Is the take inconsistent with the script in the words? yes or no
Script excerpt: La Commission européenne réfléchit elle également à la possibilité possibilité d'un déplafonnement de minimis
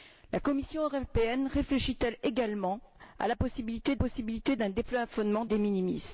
no